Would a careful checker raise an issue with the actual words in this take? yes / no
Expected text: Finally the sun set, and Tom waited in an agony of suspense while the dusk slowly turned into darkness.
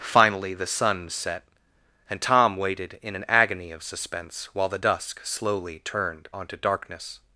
yes